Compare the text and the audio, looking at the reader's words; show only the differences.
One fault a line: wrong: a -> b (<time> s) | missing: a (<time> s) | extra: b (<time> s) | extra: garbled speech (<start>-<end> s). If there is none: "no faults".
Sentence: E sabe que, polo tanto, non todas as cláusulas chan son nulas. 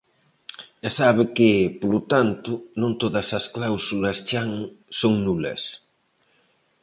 no faults